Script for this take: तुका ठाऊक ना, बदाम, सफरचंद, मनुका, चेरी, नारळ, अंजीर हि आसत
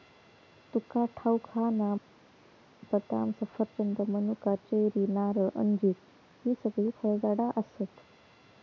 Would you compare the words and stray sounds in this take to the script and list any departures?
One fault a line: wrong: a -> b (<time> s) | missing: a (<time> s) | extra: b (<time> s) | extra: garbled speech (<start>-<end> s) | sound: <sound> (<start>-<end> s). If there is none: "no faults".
extra: हा (1.5 s)
extra: सगळी फळझाडा (6.6 s)